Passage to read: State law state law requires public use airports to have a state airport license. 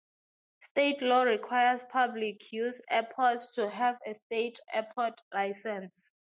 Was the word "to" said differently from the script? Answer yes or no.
no